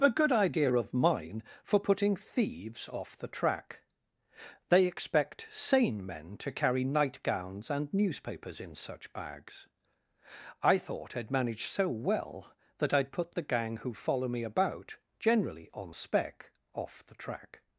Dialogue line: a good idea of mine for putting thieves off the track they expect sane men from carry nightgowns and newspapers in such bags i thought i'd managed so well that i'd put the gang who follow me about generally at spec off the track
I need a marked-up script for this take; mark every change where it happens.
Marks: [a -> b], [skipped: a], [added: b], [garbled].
a good idea of mine for putting thieves off the track they expect sane men [from -> to] carry nightgowns and newspapers in such bags i thought i'd managed so well that i'd put the gang who follow me about generally [at -> on] spec off the track